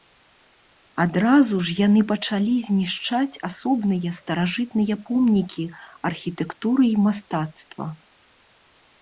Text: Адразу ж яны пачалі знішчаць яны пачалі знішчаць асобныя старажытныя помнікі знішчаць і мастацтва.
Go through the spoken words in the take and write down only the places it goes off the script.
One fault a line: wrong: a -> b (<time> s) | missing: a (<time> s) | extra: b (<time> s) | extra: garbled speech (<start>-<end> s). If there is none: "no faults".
missing: яны пачалі знішчаць (3.4 s)
wrong: знішчаць -> архітэктуры (6.1 s)